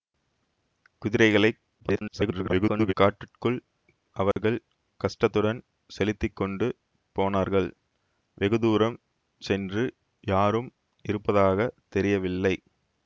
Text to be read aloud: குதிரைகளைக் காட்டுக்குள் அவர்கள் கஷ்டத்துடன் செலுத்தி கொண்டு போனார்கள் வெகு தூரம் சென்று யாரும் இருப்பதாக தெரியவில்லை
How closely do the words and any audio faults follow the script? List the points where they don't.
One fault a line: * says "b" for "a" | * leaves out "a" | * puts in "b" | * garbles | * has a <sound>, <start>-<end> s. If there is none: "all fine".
* garbles
* has a dropout, 4.3-4.4 s